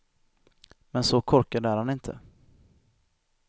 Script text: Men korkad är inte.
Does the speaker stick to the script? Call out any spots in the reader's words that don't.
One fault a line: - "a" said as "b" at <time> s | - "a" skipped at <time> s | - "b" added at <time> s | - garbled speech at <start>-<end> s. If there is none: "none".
- "så" added at 1.0 s
- "han" added at 1.8 s